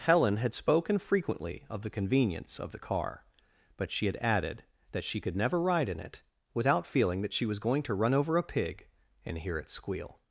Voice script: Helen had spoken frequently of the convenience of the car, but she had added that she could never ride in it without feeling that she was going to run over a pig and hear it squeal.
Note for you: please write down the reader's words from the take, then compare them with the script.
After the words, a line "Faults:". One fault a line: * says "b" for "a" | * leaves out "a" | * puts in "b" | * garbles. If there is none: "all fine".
Helen had spoken frequently of the convenience of the car, but she had added that she could never ride in it without feeling that she was going to run over a pig and hear it squeal.
Faults:
all fine